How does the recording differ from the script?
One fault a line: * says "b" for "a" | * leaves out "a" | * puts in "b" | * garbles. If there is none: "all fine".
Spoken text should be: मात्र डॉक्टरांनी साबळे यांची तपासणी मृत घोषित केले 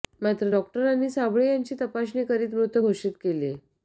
* puts in "करीत"